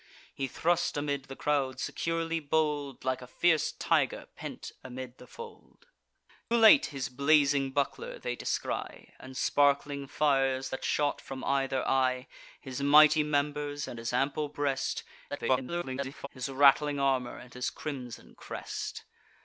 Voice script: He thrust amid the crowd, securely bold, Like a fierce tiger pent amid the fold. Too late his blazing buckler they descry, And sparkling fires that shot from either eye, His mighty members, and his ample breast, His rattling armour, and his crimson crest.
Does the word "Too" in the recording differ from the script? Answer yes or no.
yes